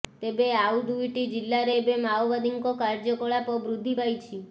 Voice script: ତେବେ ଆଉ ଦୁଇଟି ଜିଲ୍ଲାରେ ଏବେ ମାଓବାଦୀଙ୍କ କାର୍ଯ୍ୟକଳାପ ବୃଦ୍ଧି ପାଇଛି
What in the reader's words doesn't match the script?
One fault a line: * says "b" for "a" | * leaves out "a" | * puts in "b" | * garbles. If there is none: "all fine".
all fine